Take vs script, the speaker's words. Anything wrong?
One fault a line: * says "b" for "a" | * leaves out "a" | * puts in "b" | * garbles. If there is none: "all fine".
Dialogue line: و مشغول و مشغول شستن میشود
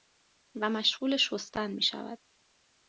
* leaves out "و مشغول"